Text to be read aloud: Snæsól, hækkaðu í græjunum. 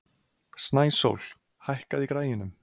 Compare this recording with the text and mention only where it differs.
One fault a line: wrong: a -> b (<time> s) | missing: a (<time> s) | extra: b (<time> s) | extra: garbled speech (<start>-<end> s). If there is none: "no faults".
no faults